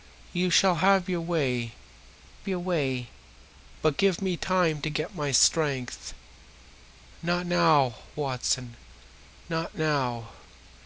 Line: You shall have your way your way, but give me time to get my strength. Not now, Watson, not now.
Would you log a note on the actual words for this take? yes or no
no